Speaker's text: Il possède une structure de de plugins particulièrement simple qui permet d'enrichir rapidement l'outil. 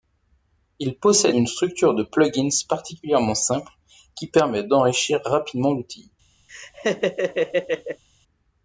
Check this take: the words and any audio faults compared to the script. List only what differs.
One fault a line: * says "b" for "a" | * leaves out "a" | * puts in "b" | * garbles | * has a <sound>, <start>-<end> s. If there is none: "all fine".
* leaves out "de"
* has a laugh, 6.5-8.0 s